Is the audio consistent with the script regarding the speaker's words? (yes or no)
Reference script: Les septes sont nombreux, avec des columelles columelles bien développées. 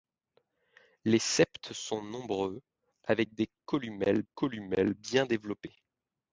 yes